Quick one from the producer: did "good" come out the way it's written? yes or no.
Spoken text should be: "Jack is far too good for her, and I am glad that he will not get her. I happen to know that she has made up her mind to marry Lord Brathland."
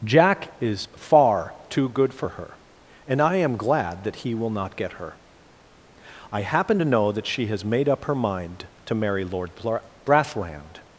yes